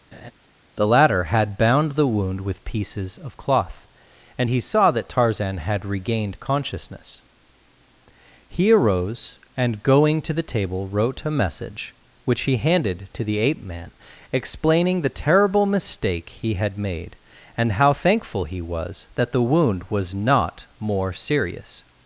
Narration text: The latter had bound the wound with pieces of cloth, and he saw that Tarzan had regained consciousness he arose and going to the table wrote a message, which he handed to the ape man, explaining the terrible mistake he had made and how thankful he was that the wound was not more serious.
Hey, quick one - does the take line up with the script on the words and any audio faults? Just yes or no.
no